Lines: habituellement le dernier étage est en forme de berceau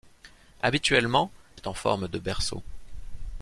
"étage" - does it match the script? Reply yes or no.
no